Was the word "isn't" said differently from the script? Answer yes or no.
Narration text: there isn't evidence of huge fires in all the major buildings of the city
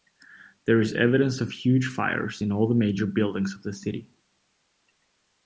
yes